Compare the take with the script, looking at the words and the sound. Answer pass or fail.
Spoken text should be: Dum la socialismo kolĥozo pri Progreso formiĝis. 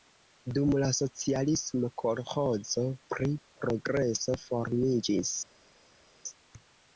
pass